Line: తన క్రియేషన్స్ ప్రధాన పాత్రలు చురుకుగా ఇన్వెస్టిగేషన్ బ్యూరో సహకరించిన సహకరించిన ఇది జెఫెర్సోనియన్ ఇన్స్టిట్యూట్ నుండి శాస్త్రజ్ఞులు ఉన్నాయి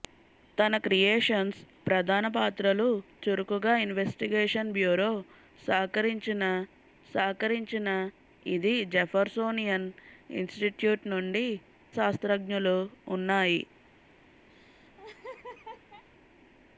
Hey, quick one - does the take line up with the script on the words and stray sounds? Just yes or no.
no